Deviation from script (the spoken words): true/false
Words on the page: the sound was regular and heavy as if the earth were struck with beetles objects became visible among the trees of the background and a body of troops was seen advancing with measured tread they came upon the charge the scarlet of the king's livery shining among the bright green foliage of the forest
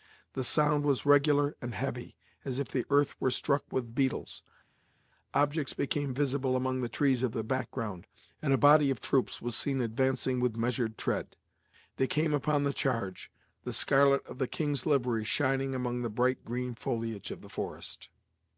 false